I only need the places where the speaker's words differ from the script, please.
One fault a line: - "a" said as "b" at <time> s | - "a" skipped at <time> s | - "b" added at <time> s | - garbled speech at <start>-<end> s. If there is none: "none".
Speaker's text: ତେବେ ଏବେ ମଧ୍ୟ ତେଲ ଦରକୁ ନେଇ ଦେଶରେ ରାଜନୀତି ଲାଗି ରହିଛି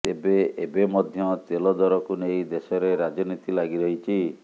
none